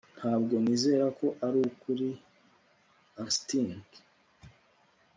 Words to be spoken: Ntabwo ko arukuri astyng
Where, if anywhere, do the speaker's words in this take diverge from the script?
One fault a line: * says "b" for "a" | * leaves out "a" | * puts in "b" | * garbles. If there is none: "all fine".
* puts in "nizera"